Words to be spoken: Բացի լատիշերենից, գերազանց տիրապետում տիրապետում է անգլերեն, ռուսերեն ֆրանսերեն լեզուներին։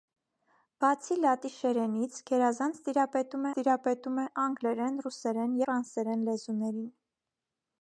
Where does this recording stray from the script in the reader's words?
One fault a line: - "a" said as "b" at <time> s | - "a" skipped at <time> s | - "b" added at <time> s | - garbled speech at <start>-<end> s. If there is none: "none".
none